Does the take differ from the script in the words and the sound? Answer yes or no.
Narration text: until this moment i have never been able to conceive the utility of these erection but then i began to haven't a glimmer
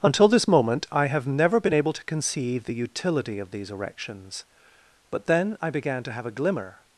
yes